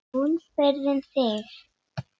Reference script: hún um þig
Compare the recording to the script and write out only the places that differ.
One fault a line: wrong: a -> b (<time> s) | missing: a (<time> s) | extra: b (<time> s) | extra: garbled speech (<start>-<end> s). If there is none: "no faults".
extra: spurði (0.4 s)